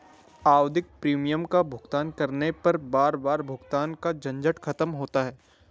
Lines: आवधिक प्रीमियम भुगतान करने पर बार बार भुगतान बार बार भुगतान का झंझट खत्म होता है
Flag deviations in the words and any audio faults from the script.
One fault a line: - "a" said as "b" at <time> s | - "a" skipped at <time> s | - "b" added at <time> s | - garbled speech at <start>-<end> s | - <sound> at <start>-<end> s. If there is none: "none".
- "का" added at 1.4 s
- "बार बार भुगतान" skipped at 3.9 s